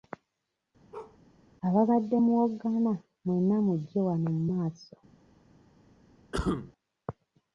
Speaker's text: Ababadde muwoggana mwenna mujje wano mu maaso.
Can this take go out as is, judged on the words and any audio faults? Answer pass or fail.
fail